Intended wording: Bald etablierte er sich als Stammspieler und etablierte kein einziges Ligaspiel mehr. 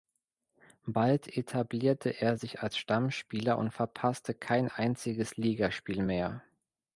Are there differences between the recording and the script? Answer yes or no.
yes